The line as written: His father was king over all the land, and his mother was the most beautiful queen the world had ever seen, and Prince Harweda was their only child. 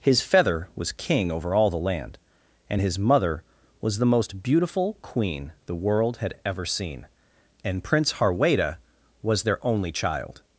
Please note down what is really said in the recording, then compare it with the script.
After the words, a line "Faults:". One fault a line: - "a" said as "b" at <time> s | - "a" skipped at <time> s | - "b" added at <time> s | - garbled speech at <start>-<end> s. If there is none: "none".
His feather was king over all the land, and his mother was the most beautiful queen the world had ever seen, and Prince Harweda was their only child.
Faults:
- "father" said as "feather" at 0.2 s